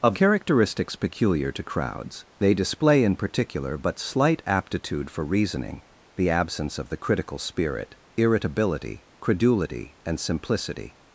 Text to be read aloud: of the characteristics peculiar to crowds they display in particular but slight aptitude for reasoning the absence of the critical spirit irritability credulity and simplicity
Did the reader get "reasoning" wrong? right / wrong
right